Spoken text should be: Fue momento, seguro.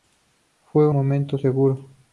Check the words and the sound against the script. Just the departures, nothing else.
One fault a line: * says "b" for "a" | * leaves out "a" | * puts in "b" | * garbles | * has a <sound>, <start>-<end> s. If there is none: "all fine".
all fine